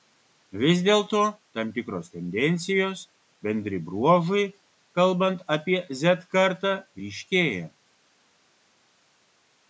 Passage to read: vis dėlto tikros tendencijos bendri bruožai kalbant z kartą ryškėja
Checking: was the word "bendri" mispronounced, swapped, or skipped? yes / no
no